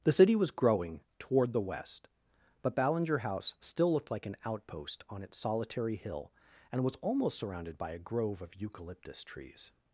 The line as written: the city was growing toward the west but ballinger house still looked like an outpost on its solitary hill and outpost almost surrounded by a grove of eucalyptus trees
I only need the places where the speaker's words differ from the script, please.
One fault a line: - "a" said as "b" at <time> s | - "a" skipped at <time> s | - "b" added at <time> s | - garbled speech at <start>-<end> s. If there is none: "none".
- "outpost" said as "was" at 6.8 s